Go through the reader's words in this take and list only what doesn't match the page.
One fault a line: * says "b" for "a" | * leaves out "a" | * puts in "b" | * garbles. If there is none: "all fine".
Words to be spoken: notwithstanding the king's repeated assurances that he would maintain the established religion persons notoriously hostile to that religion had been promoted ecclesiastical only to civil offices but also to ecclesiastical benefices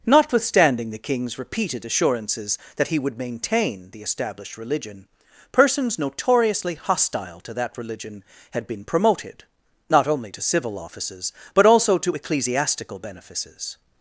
* says "not" for "ecclesiastical"